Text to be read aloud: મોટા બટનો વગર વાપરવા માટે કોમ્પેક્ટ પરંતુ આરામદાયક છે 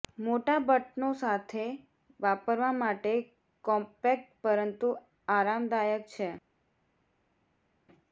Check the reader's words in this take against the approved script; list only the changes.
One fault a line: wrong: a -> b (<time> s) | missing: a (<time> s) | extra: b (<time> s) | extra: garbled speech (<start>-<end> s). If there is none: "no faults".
wrong: વગર -> સાથે (1.2 s)